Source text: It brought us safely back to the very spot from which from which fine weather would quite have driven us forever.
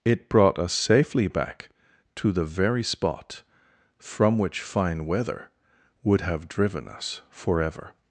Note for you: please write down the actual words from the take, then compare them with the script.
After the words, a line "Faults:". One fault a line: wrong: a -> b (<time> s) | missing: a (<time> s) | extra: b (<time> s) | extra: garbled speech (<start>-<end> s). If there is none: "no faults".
It brought us safely back to the very spot from which fine weather would have driven us forever.
Faults:
missing: from which (4.6 s)
missing: quite (6.2 s)